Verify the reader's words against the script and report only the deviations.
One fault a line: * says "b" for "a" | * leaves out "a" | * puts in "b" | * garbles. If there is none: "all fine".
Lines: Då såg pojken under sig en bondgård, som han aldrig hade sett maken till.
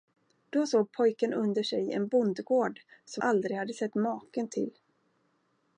* leaves out "han"